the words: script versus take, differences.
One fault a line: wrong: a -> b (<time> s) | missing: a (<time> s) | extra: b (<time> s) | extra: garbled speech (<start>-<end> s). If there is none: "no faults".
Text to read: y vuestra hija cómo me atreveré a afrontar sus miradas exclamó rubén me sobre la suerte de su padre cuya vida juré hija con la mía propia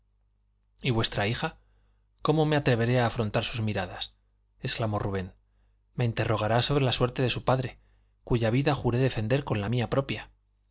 extra: interrogará (6.0 s)
wrong: hija -> defender (9.0 s)